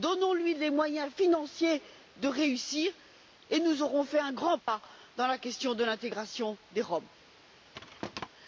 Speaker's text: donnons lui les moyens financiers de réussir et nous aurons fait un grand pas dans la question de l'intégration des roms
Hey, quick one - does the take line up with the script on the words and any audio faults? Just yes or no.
no